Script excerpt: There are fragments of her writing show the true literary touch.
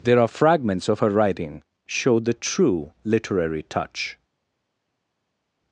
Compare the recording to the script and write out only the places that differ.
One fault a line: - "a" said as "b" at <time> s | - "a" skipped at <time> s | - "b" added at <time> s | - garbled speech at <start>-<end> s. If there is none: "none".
none